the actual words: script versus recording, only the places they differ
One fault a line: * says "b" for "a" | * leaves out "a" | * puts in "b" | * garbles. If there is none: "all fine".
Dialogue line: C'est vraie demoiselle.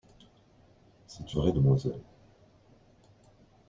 all fine